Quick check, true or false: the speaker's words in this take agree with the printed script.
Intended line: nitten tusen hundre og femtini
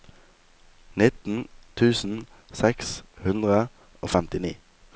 false